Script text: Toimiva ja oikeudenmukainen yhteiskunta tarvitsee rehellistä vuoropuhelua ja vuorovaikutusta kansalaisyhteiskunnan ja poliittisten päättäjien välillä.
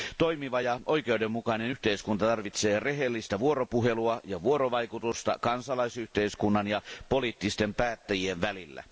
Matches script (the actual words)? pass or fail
pass